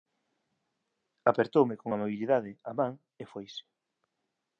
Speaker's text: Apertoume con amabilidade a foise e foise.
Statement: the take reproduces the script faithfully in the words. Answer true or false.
false